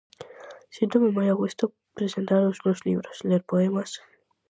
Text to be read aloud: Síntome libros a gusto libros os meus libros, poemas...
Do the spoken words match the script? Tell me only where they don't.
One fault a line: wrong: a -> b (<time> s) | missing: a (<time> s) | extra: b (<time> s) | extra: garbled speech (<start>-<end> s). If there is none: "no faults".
wrong: libros -> moi (1.2 s)
wrong: libros -> presentar (2.0 s)
extra: ler (3.3 s)